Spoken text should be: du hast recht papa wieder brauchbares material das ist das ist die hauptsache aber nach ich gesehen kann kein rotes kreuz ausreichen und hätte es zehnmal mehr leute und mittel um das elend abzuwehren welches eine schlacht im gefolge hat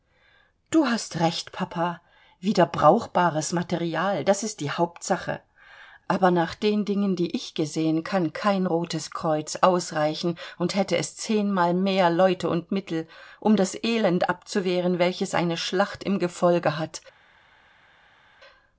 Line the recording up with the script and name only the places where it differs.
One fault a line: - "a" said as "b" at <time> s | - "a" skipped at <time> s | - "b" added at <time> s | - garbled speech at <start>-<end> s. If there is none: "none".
- "das ist" skipped at 4.6 s
- "den dingen die" added at 6.5 s